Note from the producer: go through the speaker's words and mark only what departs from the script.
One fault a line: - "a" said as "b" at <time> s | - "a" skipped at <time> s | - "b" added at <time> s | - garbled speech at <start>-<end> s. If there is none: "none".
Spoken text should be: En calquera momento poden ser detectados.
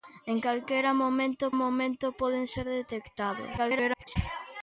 - "momento" added at 1.5 s
- garbled speech at 3.6-4.2 s